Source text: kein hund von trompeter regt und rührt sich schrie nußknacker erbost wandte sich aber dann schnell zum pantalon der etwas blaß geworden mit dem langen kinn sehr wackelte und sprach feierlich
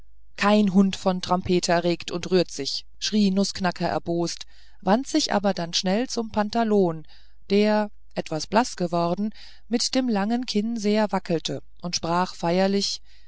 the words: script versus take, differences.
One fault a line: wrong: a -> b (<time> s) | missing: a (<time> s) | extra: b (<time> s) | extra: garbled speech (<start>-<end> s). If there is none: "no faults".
no faults